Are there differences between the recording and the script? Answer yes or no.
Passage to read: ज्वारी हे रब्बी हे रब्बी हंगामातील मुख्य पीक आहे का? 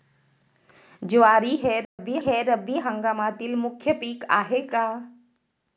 no